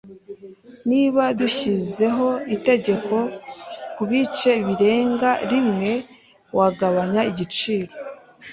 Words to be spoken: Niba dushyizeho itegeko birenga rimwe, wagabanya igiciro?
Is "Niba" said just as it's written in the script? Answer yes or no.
yes